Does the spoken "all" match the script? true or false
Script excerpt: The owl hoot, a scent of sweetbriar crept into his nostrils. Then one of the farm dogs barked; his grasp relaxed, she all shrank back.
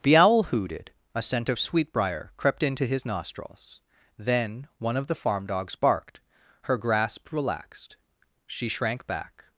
false